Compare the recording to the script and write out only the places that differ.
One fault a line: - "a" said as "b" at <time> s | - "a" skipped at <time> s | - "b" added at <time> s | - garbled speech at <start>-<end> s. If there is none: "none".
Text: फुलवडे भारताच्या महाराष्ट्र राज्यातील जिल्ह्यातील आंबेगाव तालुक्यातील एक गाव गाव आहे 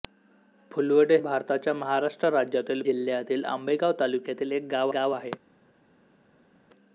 none